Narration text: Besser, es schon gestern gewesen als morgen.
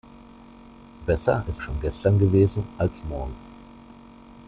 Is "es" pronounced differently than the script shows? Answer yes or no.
no